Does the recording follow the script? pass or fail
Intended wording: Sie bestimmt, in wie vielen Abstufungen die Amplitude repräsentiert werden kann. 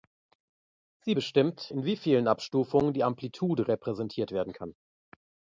pass